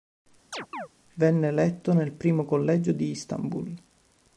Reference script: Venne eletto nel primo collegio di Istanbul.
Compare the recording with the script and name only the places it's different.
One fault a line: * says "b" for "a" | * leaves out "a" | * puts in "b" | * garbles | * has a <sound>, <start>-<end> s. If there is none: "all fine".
* has a chirp, 0.5-0.9 s